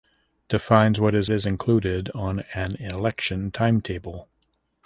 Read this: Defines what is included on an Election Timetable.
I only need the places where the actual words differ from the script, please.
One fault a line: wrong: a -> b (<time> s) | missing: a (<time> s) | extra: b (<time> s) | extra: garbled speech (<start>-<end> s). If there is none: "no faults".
extra: is (1.3 s)